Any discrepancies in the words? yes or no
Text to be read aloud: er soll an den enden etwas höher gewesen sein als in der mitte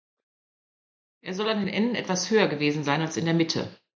no